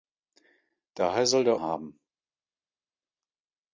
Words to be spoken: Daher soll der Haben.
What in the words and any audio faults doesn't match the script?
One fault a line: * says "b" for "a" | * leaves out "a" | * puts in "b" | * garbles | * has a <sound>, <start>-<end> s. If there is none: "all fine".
all fine